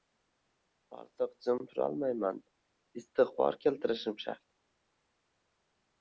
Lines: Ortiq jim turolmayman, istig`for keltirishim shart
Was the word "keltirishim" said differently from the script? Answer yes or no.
no